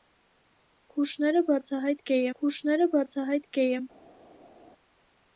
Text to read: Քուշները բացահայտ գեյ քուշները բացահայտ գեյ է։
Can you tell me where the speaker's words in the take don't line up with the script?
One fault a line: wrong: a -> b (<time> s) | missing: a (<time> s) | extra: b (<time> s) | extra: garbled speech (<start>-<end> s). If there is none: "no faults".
no faults